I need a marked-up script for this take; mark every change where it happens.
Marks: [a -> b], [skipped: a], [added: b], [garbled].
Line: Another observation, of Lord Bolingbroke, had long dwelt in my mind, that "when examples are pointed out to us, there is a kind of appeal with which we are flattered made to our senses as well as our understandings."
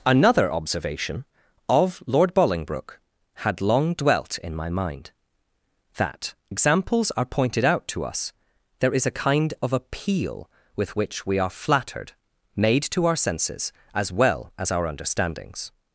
Another observation, of Lord Bolingbroke, had long dwelt in my mind, that [skipped: "when] examples are pointed out to us, there is a kind of appeal with which we are flattered made to our senses as well as our understandings."